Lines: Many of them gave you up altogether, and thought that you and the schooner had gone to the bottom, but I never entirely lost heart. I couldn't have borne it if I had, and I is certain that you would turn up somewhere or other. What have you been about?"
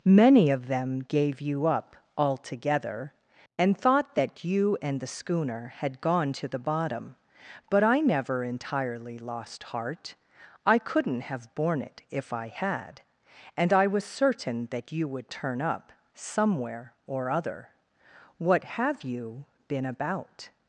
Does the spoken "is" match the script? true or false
false